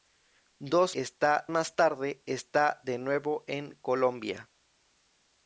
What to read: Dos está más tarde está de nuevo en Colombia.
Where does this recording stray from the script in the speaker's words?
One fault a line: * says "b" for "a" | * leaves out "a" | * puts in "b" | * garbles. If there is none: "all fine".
all fine